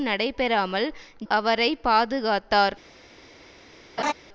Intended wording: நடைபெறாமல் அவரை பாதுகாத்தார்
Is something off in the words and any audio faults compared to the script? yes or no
yes